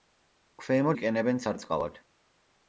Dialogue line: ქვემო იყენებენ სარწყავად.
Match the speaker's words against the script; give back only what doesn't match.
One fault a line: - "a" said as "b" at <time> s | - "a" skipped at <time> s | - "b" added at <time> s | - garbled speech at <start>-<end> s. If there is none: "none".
none